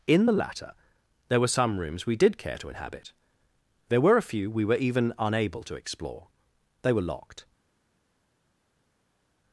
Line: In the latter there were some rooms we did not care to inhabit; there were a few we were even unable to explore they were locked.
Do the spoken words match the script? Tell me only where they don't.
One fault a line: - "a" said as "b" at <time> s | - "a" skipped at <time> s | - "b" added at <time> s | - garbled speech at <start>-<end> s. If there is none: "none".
- "not" skipped at 2.4 s